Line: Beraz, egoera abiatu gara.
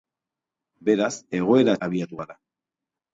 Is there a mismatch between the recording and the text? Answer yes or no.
no